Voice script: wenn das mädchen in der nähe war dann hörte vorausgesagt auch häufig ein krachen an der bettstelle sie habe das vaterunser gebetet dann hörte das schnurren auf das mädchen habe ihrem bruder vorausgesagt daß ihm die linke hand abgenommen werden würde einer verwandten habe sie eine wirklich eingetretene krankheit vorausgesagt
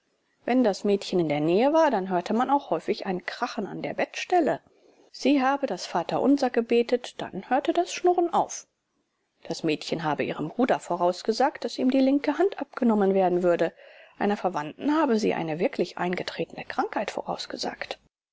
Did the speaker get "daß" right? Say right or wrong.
right